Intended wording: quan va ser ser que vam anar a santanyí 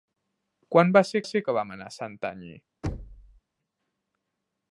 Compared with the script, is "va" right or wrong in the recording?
right